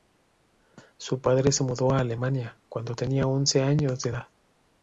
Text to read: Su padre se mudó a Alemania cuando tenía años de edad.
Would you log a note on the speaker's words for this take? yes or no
yes